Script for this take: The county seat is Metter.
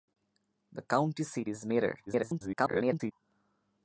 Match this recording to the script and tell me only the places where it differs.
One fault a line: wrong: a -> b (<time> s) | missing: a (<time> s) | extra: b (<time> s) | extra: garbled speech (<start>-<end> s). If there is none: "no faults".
extra: garbled speech (2.1-3.1 s)